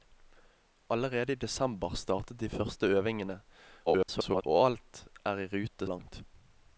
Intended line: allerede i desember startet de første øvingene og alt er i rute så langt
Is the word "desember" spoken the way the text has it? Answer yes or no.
yes